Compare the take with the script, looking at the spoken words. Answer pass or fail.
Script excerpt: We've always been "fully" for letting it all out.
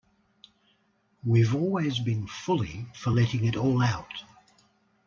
pass